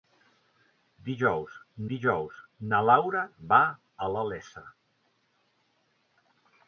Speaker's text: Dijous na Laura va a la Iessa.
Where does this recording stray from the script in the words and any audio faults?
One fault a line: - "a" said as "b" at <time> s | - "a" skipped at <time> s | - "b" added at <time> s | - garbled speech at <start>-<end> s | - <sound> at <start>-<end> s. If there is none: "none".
- "dijous" added at 1.9 s